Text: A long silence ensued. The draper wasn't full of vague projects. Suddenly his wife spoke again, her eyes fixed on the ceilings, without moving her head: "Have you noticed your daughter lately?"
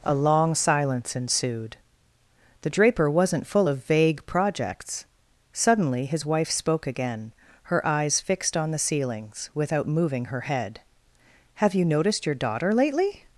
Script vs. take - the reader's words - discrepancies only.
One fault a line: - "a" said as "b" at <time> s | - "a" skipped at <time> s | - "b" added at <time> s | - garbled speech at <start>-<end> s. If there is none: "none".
none